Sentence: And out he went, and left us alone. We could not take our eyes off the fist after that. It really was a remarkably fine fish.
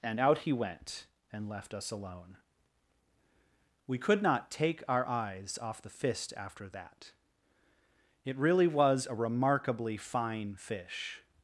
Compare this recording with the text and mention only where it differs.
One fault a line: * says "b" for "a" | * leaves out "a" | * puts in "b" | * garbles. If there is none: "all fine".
all fine